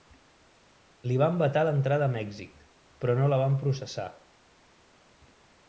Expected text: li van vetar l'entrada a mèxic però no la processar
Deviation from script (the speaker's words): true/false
true